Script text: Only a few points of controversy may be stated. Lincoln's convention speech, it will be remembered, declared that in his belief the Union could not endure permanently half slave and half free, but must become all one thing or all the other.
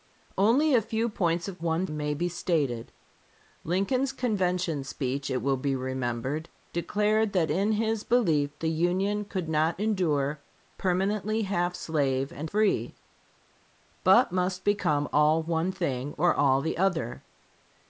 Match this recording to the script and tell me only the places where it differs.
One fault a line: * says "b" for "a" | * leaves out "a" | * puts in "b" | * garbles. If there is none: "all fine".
* says "one" for "controversy"
* leaves out "half"